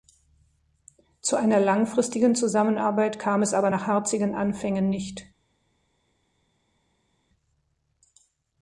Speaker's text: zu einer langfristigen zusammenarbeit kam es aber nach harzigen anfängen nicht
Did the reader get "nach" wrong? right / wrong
right